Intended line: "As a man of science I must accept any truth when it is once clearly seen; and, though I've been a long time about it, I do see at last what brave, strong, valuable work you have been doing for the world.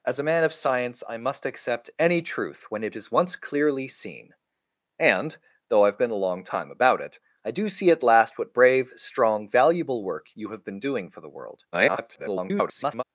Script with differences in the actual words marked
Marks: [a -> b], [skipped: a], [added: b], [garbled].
"As a man of science I must accept any truth when it is once clearly seen; and, though I've been a long time about it, I do see at last what brave, strong, valuable work you have been doing for the world. [garbled]